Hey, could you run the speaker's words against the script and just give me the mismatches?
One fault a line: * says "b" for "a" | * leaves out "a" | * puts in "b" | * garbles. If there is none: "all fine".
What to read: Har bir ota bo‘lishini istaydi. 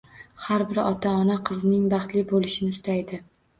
* puts in "ona qizining baxtli"